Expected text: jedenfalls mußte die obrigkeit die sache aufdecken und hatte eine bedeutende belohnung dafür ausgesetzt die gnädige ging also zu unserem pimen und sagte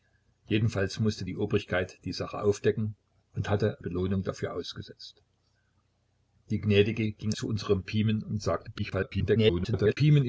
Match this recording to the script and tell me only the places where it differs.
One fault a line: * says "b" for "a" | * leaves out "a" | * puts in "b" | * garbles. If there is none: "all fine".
* leaves out "eine bedeutende"
* leaves out "also"
* garbles